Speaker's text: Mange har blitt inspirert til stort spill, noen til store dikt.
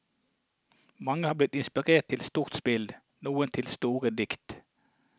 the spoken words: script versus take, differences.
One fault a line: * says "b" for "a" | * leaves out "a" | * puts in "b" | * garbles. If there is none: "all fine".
all fine